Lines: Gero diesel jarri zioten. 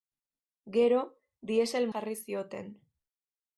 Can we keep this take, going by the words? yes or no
yes